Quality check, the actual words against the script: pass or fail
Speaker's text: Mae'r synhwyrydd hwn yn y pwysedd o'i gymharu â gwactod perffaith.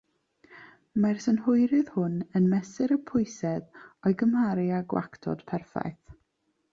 fail